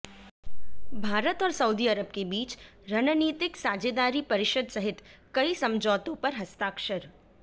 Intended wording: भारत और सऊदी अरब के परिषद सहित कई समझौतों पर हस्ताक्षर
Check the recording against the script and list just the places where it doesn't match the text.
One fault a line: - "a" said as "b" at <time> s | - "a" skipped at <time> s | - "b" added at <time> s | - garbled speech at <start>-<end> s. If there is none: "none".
- "बीच रणनीतिक साझेदारी" added at 2.2 s